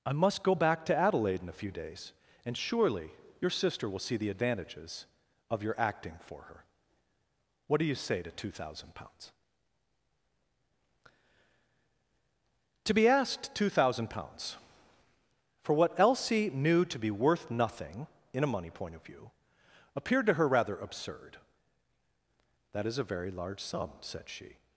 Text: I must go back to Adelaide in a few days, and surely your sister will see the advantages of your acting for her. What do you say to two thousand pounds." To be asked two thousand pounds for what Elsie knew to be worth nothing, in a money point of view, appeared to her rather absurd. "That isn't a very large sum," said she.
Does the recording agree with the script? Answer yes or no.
no